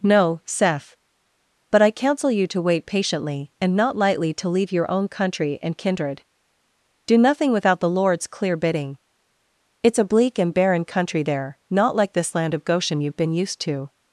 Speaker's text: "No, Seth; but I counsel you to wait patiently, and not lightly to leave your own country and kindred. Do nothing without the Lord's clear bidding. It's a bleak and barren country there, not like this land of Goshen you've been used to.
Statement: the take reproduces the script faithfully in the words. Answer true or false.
true